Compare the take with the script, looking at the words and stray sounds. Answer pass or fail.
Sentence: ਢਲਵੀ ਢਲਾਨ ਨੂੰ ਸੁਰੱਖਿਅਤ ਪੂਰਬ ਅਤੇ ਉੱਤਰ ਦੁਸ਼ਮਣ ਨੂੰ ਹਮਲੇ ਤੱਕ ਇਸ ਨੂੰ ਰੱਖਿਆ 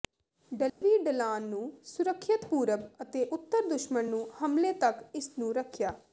fail